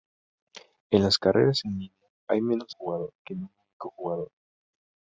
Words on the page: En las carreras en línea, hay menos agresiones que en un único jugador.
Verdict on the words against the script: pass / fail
fail